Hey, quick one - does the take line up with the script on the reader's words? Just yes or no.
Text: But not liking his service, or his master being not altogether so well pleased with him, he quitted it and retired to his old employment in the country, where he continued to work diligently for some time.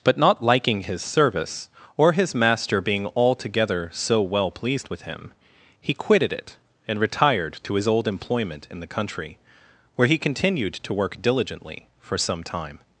no